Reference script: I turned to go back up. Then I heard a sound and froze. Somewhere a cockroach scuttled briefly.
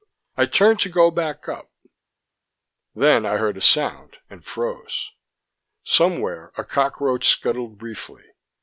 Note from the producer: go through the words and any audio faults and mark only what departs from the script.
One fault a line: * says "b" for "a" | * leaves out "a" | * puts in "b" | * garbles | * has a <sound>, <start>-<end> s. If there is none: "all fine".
all fine